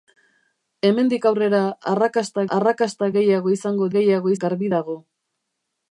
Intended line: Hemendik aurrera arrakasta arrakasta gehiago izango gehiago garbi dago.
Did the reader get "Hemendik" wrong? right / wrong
right